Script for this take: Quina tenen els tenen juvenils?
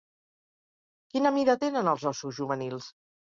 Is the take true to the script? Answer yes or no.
no